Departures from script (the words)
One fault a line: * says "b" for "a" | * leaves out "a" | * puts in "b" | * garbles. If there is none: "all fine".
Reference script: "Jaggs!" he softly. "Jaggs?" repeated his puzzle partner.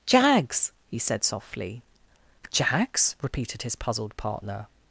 * puts in "said"
* says "puzzled" for "puzzle"